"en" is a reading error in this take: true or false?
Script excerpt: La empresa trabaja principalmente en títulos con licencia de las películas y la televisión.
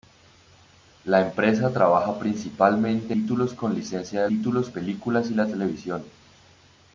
true